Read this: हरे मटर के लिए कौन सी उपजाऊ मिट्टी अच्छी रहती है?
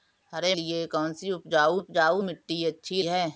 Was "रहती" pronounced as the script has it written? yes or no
no